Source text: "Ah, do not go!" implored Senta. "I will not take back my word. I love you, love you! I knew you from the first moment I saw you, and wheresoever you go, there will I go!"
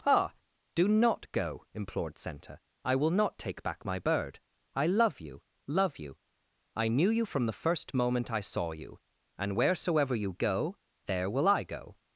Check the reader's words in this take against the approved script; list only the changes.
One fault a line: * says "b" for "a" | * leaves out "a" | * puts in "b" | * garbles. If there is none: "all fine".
* says "bird" for "word"